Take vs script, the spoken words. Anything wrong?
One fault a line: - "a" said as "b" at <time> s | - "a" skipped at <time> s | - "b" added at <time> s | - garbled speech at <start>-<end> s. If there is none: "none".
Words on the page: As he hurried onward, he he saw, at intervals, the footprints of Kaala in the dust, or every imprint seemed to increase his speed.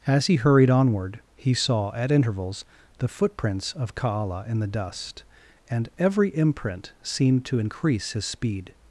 - "he" skipped at 1.5 s
- "or" said as "and" at 5.7 s